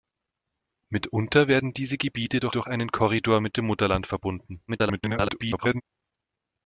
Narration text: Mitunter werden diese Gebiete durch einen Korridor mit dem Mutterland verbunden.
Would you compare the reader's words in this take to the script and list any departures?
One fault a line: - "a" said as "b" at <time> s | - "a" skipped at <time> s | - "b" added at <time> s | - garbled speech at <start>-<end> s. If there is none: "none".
- "durch" added at 2.5 s
- garbled speech at 4.7-5.8 s